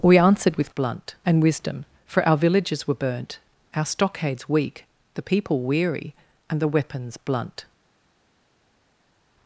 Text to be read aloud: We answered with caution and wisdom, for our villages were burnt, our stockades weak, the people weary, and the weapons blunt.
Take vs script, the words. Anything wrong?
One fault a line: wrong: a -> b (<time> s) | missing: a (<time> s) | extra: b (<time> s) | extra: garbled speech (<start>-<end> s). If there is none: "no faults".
wrong: caution -> blunt (0.7 s)